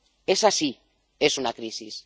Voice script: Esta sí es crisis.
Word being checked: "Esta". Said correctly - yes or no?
no